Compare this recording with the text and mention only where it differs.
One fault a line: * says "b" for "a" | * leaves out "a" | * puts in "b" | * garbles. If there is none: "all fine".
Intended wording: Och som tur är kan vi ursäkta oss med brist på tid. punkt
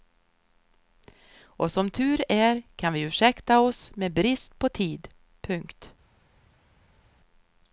all fine